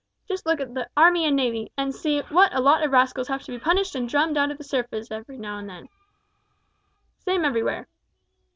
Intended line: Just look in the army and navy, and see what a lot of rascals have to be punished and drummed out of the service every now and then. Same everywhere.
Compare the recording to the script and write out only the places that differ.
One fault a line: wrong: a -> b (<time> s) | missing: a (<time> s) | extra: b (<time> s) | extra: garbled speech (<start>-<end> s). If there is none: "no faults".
wrong: in -> at (0.6 s)